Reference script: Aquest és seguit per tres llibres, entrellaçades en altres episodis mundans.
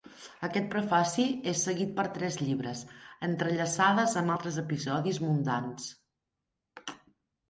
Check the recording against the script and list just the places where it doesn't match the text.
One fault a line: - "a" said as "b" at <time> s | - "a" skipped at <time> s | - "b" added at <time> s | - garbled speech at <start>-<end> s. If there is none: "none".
- "prefaci" added at 0.7 s
- "en" said as "amb" at 4.2 s